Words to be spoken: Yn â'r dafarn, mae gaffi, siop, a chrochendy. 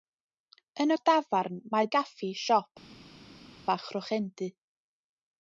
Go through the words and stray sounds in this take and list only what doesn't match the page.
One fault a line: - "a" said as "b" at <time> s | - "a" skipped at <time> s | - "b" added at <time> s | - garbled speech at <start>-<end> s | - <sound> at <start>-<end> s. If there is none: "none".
none